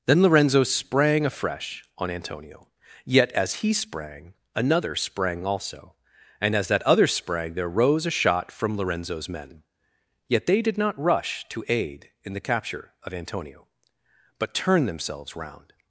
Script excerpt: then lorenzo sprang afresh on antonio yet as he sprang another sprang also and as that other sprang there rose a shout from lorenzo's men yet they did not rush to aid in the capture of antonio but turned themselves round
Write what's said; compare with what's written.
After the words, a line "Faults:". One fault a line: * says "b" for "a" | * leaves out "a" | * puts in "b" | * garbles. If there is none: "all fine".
then lorenzo sprang afresh on antonio yet as he sprang another sprang also and as that other sprang there rose a shot from lorenzo's men yet they did not rush to aid in the capture of antonio but turned themselves round
Faults:
* says "shot" for "shout"